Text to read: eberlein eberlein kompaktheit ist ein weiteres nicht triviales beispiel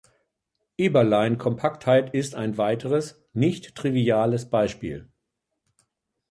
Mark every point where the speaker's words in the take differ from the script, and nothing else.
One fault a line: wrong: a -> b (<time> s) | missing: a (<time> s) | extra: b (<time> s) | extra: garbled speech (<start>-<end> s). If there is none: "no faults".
missing: eberlein (1.4 s)